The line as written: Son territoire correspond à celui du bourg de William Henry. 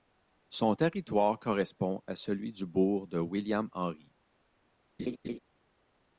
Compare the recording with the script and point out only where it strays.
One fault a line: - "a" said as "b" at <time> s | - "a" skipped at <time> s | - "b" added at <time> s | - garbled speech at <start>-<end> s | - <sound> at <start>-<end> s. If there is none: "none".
- laugh at 5.0-5.4 s